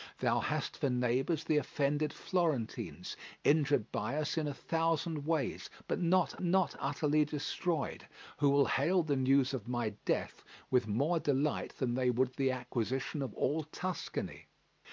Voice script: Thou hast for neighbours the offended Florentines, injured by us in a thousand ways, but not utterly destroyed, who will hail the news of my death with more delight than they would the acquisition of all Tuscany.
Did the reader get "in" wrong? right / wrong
right